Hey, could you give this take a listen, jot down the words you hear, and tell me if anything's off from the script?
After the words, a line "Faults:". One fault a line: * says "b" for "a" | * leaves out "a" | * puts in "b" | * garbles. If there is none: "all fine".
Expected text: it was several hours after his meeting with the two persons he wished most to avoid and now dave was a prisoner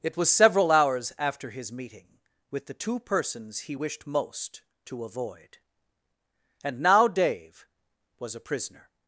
it was several hours after his meeting with the two persons he wished most to avoid and now dave was a prisoner
Faults:
all fine